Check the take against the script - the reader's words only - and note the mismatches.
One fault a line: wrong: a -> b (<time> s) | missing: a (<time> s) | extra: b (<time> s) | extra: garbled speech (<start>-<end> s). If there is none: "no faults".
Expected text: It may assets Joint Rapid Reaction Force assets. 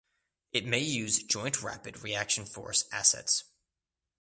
wrong: assets -> use (0.8 s)